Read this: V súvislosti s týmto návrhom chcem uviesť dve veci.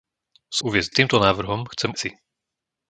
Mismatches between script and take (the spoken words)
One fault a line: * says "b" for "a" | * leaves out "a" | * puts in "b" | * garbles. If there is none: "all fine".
* says "uviesť" for "súvislosti"
* leaves out "uviesť dve"